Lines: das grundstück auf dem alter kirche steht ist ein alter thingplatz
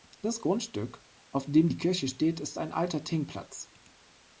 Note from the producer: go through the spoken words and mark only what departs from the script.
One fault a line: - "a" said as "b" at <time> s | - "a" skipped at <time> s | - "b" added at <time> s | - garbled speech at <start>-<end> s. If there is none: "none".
- "alter" said as "die" at 1.7 s